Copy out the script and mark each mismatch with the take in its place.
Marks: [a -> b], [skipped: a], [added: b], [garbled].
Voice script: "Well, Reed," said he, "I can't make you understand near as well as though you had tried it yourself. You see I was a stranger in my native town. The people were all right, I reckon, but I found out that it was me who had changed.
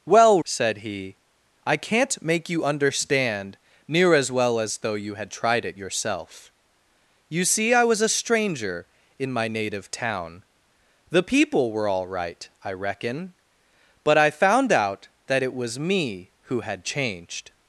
"Well, [skipped: Reed,"] said he, "I can't make you understand near as well as though you had tried it yourself. You see I was a stranger in my native town. The people were all right, I reckon, but I found out that it was me who had changed.